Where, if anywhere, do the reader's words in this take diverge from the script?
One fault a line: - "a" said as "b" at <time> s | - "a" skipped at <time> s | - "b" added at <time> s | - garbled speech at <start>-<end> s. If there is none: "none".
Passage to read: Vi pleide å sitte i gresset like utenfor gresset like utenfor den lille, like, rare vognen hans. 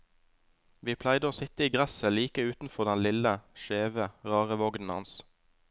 - "gresset like utenfor" skipped at 2.9 s
- "like" said as "skjeve" at 3.6 s